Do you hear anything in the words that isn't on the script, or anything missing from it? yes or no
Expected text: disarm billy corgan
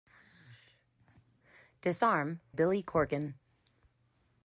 no